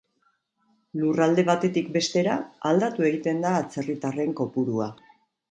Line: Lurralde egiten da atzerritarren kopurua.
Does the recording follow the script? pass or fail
fail